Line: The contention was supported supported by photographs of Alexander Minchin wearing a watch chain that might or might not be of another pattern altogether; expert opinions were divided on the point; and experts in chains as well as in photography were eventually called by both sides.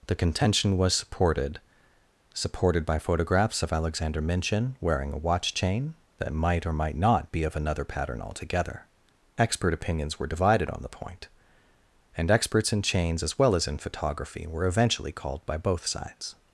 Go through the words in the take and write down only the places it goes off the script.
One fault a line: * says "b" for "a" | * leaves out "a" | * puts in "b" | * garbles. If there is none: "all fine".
all fine